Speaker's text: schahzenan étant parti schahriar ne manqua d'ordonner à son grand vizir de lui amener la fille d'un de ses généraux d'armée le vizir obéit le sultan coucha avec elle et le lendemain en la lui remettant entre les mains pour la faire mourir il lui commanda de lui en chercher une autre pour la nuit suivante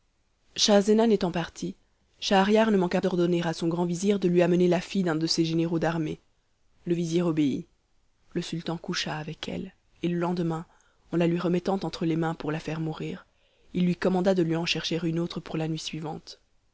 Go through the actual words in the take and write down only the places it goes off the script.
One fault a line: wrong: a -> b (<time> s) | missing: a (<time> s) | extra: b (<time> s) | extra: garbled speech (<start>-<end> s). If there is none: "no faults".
no faults